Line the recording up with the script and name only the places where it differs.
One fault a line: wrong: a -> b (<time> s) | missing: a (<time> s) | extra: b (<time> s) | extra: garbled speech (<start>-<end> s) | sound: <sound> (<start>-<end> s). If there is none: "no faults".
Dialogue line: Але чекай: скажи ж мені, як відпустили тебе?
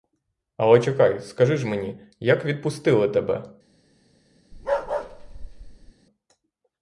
sound: bark (4.5-5.9 s)